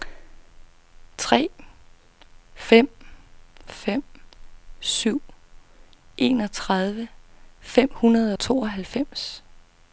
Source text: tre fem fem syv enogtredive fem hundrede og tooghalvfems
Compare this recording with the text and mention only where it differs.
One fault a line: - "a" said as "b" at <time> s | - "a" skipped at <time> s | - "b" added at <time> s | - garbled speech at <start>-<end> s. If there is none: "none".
none